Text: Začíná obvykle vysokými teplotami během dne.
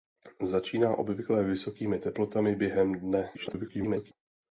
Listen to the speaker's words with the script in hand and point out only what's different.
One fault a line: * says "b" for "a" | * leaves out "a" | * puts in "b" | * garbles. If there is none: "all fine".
* garbles